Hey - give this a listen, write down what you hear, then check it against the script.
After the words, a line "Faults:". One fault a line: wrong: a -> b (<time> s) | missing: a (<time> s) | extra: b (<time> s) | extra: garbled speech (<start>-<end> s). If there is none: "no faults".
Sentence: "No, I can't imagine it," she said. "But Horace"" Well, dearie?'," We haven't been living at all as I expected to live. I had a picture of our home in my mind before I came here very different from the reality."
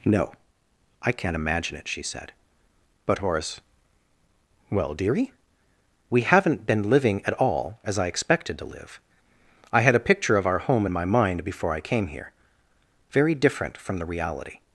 "No, I can't imagine it," she said. "But Horace"" Well, dearie?'," We haven't been living at all as I expected to live. I had a picture of our home in my mind before I came here very different from the reality."
Faults:
no faults